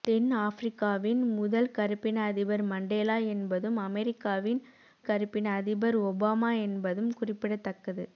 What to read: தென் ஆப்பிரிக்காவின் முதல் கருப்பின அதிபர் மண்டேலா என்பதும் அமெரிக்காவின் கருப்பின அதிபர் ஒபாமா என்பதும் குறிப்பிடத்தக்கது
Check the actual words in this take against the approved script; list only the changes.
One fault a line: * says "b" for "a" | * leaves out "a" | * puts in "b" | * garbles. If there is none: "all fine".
all fine